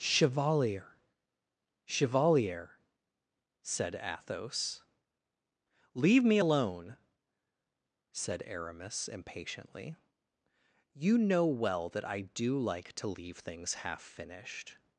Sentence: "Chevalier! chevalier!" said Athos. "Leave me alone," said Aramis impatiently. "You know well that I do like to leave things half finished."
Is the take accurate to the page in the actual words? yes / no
yes